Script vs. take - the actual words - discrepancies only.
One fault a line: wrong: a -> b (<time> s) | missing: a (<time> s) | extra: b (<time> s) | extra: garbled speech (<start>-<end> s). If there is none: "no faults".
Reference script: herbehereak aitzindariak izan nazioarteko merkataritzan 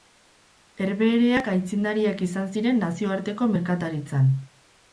extra: ziren (2.6 s)